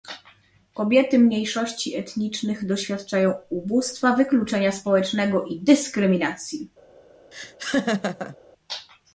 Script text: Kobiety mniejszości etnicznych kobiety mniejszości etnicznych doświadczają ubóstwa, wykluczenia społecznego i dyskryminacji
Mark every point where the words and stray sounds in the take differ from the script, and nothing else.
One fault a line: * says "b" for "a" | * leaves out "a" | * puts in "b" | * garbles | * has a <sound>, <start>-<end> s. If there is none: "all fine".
* leaves out "kobiety mniejszości etnicznych"
* has a laugh, 7.3-8.4 s